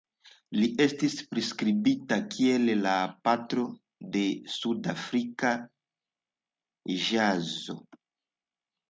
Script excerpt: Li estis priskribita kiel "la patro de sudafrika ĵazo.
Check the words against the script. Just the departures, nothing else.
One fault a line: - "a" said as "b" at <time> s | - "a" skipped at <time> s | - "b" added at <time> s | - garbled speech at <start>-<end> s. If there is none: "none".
none